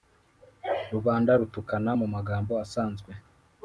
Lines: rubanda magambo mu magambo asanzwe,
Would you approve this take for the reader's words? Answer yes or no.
no